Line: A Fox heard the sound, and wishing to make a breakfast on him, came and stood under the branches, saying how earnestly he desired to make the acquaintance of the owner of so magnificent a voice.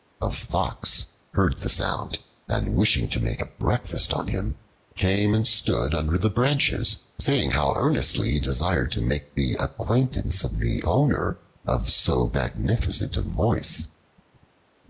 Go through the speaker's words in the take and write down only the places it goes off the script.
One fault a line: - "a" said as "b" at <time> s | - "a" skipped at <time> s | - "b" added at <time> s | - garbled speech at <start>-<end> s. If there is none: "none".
none